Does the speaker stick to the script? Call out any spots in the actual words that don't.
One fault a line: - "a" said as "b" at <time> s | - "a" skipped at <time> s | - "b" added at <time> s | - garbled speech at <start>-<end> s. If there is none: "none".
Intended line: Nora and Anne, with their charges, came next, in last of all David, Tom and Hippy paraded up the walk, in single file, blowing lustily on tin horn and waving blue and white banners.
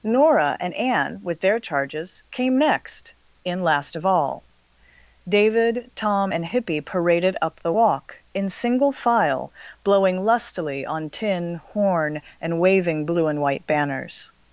none